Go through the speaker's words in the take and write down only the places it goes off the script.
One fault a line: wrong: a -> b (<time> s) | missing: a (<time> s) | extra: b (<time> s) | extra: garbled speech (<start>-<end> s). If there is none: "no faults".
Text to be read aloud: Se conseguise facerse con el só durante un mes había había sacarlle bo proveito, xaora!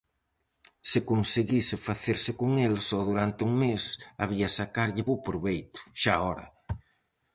missing: había (4.5 s)